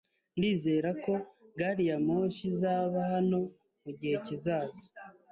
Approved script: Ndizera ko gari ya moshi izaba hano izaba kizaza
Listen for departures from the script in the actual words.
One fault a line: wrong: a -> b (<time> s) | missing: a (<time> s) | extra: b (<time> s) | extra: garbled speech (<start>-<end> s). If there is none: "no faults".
wrong: izaba -> mugihe (3.8 s)